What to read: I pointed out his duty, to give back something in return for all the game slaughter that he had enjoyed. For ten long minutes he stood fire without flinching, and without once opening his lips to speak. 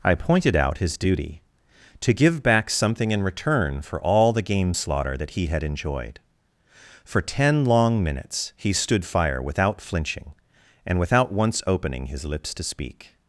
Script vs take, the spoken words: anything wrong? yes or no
no